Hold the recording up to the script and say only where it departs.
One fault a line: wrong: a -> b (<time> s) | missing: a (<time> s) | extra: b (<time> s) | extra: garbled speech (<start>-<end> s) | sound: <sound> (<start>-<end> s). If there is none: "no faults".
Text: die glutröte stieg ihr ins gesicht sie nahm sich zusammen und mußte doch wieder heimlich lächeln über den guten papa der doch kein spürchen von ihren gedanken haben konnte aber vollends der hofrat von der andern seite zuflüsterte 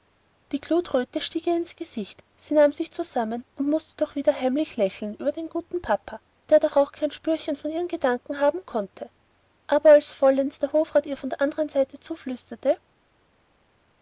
extra: auch (6.8 s)
extra: als (9.9 s)
extra: ihr (11.1 s)